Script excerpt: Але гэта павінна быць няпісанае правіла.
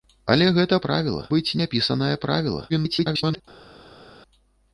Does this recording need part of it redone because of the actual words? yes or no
yes